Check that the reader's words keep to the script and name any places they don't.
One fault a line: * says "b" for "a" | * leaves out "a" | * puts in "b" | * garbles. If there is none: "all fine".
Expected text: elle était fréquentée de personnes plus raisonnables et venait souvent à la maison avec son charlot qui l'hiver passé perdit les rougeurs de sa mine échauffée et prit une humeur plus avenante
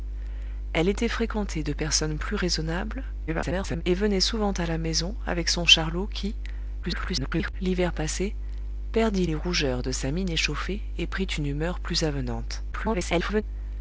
* garbles
* garbles
* garbles